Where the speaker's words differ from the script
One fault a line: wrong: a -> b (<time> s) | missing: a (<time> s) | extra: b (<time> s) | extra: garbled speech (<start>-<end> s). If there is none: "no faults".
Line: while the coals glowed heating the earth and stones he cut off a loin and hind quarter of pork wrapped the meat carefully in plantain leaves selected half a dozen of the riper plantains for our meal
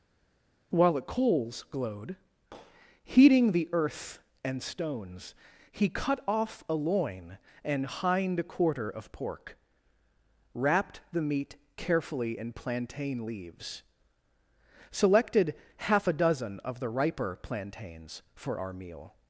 no faults